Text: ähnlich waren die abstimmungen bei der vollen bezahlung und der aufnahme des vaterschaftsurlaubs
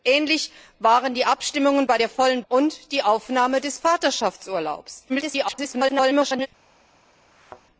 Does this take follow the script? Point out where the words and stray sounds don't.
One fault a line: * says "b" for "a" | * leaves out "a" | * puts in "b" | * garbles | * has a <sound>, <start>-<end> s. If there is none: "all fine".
* leaves out "bezahlung"
* garbles
* has a thud, 7.3-7.6 s